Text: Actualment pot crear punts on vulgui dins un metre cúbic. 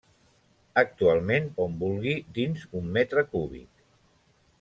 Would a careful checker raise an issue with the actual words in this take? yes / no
yes